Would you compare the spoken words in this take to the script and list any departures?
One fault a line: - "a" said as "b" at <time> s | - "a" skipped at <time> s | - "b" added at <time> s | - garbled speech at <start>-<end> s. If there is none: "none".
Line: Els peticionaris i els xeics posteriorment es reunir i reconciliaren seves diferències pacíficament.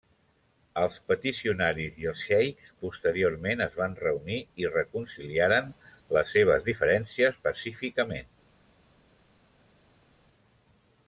- "van" added at 3.8 s
- "les" added at 6.2 s